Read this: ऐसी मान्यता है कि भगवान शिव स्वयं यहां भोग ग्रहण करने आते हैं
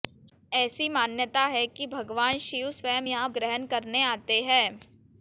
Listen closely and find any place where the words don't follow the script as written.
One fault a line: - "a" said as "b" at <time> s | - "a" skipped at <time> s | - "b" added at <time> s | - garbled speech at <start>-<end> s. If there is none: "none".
- "भोग" skipped at 3.3 s